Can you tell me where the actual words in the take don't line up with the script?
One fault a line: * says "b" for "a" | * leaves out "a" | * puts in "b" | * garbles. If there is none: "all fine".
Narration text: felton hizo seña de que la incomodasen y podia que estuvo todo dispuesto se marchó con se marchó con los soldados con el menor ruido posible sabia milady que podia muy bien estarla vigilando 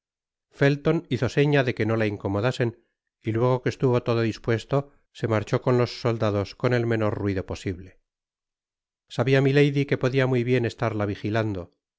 * puts in "no"
* says "luego" for "podia"
* leaves out "se marchó con"